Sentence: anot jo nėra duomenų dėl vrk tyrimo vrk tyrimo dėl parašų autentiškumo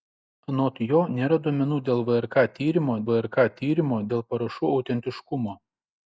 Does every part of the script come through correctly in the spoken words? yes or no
yes